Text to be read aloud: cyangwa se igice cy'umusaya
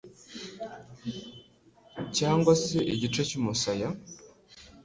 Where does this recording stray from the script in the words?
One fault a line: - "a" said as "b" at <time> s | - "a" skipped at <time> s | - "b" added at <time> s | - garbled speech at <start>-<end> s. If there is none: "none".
none